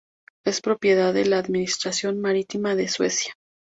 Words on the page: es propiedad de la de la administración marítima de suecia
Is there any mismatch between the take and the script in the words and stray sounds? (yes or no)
yes